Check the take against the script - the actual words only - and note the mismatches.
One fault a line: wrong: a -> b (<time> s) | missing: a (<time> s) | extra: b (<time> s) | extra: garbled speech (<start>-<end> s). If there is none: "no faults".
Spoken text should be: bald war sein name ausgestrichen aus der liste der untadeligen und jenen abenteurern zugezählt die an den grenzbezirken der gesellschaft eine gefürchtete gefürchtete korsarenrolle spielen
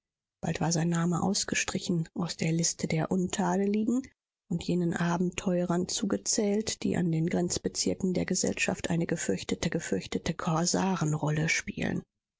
no faults